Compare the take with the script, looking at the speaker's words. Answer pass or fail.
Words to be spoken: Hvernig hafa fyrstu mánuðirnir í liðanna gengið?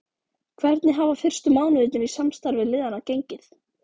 fail